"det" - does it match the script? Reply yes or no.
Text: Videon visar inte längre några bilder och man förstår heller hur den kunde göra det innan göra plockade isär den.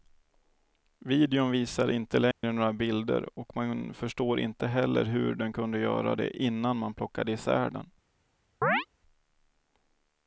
yes